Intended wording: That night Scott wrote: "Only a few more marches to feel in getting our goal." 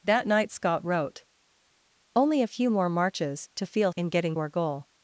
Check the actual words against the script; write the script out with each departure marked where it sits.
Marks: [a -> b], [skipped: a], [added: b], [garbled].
That night Scott wrote: "Only a few more marches to feel in getting our goal."